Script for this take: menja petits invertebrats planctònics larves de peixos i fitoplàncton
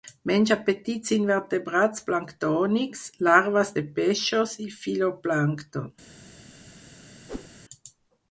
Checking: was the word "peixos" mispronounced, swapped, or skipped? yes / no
no